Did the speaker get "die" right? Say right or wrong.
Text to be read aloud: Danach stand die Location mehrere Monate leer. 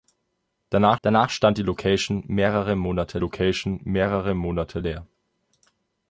right